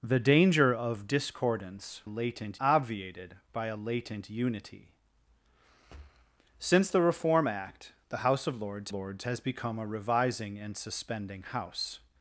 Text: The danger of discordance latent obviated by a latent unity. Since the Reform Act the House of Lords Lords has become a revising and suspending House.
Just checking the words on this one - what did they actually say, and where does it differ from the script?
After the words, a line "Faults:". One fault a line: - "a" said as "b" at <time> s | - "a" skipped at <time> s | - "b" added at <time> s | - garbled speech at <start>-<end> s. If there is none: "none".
The danger of discordance latent obviated by a latent unity. Since the Reform Act the House of Lords Lords has become a revising and suspending House.
Faults:
none